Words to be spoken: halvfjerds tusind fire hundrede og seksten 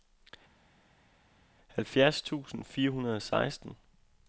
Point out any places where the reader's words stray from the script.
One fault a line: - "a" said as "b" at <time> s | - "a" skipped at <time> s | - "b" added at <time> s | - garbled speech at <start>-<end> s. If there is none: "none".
none